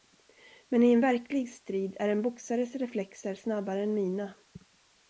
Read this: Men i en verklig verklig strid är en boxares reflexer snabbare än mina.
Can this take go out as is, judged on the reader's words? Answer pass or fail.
fail